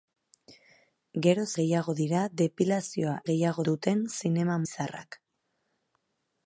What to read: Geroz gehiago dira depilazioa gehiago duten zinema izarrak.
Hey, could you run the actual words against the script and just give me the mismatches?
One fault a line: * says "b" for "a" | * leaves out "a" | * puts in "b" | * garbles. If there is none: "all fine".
all fine